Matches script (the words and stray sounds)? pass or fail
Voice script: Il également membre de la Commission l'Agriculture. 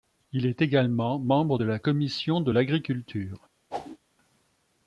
fail